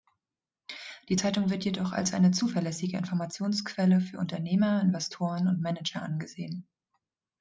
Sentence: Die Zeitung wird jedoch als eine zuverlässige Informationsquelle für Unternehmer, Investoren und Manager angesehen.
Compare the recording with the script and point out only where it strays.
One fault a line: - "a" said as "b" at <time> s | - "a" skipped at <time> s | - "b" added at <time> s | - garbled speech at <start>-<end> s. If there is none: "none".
none